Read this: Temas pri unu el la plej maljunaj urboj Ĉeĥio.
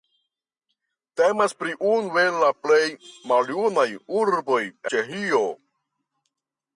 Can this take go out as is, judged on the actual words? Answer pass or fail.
pass